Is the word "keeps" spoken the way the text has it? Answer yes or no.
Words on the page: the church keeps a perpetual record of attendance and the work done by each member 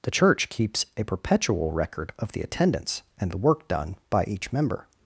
yes